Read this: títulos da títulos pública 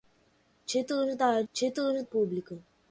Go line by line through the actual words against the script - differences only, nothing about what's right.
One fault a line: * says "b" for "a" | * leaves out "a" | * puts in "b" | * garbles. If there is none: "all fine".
all fine